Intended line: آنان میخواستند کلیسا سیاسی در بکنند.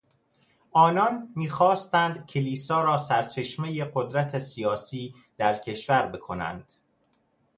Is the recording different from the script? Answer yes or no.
yes